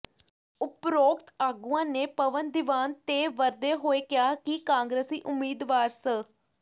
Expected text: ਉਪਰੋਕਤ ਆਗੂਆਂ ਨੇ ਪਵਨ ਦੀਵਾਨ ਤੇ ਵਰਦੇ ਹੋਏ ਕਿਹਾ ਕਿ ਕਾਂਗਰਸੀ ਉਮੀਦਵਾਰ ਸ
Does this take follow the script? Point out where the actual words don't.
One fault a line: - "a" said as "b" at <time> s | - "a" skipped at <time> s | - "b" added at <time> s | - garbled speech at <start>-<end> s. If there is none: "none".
none